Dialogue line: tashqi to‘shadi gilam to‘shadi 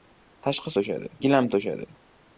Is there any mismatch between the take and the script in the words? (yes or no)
no